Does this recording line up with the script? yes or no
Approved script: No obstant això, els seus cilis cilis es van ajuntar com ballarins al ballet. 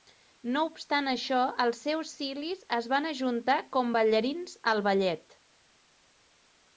no